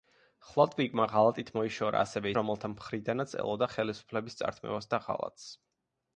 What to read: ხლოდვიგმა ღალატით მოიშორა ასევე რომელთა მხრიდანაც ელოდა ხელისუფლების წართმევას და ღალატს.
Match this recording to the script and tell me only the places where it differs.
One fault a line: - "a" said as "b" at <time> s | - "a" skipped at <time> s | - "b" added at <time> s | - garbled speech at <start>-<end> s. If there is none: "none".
none